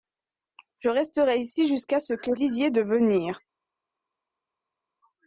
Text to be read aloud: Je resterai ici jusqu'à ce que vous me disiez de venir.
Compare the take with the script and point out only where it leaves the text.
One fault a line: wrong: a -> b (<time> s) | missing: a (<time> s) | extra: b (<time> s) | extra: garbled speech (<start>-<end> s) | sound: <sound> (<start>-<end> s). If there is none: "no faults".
missing: vous me (2.3 s)